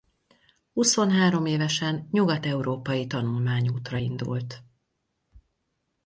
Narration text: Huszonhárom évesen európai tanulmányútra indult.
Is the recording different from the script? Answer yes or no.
yes